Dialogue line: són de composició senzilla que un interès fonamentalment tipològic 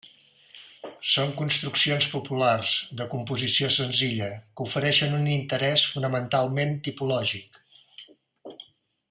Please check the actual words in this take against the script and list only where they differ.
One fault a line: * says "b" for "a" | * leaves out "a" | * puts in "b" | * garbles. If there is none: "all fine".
* puts in "construccions populars"
* puts in "ofereixen"